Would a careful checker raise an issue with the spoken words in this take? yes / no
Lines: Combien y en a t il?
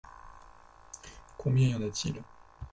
no